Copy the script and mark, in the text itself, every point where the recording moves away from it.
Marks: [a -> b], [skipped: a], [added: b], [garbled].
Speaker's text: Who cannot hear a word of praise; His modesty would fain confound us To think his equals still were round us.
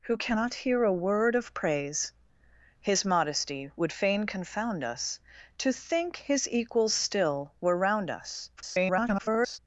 Who cannot hear a word of praise; His modesty would fain confound us To think his equals still were round us. [garbled]